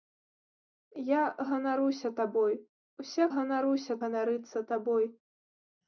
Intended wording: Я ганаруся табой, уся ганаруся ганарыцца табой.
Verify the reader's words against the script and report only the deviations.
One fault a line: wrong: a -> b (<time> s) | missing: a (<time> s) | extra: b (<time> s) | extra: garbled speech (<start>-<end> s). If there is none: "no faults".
no faults